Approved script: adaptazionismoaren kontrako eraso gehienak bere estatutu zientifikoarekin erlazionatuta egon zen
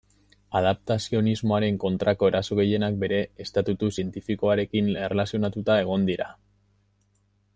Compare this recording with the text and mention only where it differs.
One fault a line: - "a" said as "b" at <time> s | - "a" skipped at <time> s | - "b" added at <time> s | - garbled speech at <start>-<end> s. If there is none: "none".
- "zen" said as "dira" at 6.1 s